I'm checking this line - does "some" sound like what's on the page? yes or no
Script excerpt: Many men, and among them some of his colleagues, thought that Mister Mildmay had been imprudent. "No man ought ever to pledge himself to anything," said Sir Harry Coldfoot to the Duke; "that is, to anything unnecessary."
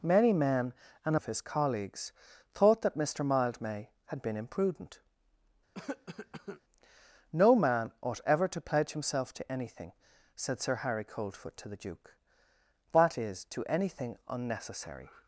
no